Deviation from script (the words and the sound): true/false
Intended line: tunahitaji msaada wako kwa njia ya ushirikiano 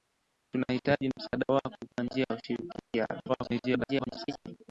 true